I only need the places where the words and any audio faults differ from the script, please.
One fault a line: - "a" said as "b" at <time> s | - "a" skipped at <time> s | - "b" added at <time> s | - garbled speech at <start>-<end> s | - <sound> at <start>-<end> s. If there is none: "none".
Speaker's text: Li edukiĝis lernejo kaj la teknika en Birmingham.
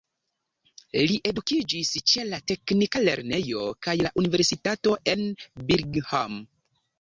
- "ĉe la teknika" added at 2.1 s
- "teknika" said as "universitato" at 4.2 s